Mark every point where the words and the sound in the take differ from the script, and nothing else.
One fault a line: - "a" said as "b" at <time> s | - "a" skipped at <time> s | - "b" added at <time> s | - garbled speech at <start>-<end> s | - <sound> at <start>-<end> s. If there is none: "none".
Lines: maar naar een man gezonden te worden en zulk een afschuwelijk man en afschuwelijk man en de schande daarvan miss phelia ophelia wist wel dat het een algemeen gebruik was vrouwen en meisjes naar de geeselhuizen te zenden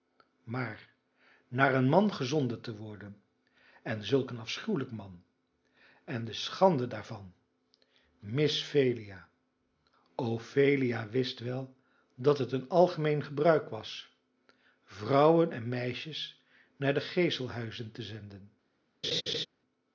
- "afschuwelijk man en" skipped at 6.2 s
- laugh at 19.0-19.5 s